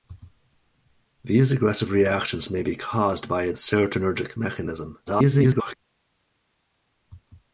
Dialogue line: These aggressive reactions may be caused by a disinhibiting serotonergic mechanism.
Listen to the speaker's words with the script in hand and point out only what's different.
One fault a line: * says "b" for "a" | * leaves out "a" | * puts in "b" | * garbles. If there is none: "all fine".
* leaves out "disinhibiting"
* garbles